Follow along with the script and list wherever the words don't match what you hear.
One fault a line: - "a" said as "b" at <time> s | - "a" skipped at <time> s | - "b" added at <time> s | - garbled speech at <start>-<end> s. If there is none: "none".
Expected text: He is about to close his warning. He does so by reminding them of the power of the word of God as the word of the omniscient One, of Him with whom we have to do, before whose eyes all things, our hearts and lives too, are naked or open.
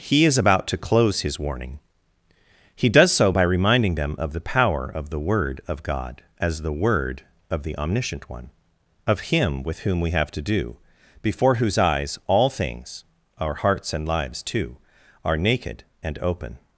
- "or" said as "and" at 16.0 s